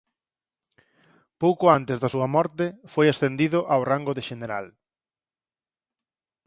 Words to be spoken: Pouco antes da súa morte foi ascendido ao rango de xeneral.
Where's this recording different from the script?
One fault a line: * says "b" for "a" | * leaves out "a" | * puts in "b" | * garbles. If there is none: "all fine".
all fine